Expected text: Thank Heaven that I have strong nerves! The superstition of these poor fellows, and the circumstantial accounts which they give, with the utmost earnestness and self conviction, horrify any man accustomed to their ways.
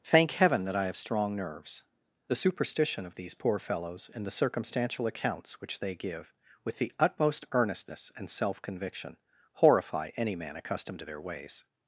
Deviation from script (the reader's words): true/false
false